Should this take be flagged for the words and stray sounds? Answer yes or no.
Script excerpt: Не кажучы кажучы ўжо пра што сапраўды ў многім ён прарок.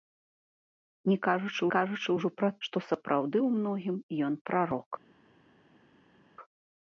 no